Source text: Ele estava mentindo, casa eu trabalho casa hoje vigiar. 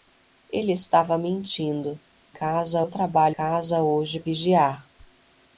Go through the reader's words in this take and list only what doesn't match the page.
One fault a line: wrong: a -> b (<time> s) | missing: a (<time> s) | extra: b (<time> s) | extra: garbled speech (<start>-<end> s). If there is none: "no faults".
no faults